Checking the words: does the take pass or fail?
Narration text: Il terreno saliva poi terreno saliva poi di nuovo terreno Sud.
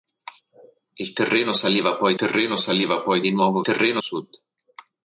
pass